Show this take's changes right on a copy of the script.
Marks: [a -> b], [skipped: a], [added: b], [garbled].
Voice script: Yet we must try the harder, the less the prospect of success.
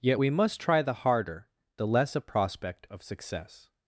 Yet we must try the harder, the less [the -> a] prospect of success.